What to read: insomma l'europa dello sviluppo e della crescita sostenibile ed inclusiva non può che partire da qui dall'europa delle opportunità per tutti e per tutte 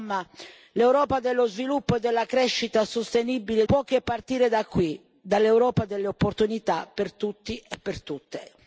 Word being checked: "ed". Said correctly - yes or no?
no